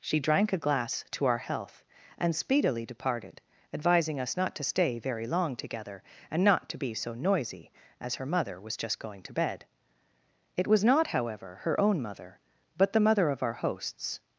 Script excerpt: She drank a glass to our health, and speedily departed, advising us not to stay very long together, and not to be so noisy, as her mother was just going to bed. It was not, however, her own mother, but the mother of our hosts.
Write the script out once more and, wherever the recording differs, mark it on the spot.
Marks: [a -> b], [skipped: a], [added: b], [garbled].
She drank a glass to our health, and speedily departed, advising us not to stay very long together, and not to be so noisy, as her mother was just going to bed. It was not, however, her own mother, but the mother of our hosts.